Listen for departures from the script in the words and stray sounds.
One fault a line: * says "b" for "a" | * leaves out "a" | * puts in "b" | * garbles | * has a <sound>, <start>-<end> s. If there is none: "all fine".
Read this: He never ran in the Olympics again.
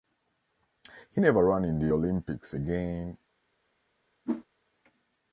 * has a whoosh, 4.2-4.4 s